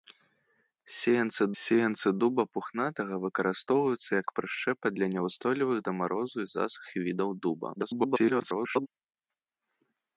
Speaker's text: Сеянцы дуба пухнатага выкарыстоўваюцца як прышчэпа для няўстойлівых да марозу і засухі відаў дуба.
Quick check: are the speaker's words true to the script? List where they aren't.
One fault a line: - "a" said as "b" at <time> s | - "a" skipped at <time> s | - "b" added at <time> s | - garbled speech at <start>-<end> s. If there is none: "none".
- "сеянцы" added at 1.6 s
- garbled speech at 7.8-8.9 s